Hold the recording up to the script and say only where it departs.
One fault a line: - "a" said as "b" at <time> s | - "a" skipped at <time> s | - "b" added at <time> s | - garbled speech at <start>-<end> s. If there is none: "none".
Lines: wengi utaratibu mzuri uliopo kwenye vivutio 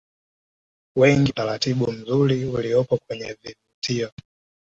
none